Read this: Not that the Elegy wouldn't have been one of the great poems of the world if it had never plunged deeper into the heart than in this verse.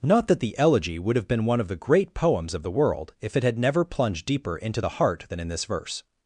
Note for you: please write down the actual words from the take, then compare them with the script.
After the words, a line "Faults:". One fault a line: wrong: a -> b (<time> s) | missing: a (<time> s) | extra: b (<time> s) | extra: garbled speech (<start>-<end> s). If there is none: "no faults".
Not that the Elegy would have been one of the great poems of the world if it had never plunged deeper into the heart than in this verse.
Faults:
wrong: wouldn't -> would (1.0 s)